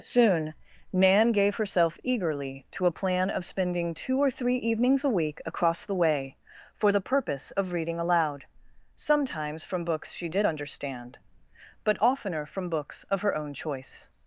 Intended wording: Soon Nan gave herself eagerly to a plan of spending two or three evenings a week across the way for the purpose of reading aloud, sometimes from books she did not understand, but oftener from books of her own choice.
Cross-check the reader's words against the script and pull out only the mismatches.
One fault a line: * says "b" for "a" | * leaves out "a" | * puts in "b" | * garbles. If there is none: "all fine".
* leaves out "not"